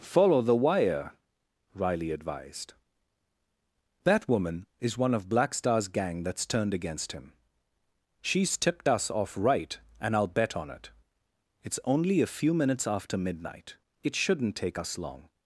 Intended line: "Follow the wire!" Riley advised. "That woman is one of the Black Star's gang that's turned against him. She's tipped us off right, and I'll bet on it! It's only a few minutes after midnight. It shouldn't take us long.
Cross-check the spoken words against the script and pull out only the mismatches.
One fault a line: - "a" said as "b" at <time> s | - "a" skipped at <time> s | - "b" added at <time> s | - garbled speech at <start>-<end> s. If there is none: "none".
- "the" skipped at 5.3 s